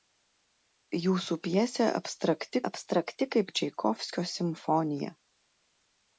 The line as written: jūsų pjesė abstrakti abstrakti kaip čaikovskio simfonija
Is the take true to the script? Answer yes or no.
yes